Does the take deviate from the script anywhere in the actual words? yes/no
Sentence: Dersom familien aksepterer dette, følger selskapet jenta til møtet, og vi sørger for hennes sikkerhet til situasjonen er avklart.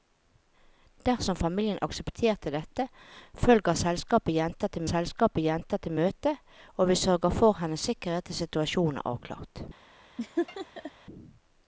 yes